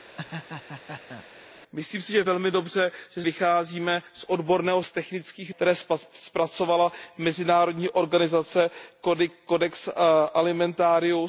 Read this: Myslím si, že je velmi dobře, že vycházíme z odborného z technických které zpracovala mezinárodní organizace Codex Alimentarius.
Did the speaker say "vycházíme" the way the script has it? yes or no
yes